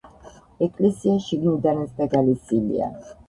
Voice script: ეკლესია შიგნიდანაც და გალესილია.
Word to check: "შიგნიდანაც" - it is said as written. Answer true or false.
true